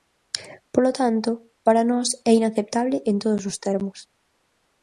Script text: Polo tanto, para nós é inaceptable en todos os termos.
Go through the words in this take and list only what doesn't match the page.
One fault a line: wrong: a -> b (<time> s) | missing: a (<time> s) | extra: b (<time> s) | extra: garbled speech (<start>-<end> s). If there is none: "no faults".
no faults